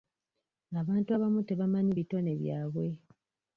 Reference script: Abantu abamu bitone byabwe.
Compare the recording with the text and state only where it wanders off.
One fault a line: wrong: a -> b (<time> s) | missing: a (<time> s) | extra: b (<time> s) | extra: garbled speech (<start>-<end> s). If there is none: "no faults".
extra: tebamanyi (1.5 s)